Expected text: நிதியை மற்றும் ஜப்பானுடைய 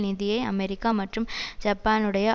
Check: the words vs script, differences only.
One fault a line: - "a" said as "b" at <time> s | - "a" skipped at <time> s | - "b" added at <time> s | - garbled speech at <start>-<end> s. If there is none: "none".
- "அமெரிக்கா" added at 0.4 s